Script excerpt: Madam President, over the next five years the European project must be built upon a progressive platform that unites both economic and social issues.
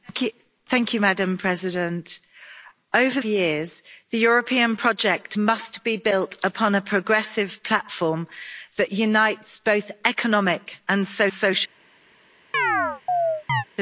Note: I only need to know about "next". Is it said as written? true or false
false